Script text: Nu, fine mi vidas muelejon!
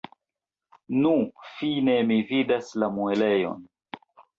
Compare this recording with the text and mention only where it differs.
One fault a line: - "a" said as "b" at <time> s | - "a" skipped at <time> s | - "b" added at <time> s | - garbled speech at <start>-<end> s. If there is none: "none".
- "la" added at 2.9 s